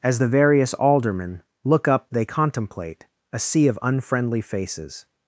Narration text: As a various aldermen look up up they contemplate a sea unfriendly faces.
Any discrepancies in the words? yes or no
yes